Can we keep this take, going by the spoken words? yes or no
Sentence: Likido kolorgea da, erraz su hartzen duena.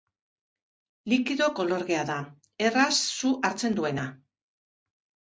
yes